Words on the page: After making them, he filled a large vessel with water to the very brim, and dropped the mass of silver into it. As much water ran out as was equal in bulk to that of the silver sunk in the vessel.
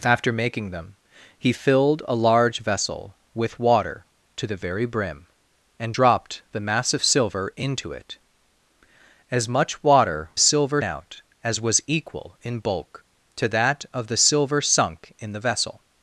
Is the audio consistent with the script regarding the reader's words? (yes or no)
no